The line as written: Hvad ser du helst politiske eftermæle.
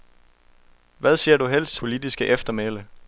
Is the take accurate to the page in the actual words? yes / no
yes